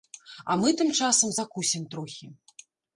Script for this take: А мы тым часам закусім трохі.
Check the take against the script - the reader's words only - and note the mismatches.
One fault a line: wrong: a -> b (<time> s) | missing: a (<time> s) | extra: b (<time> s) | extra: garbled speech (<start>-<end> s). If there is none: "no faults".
no faults